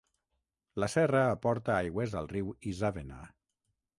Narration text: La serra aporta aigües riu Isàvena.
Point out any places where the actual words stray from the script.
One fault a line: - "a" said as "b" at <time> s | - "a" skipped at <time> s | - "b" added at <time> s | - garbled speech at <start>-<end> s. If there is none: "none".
- "al" added at 2.2 s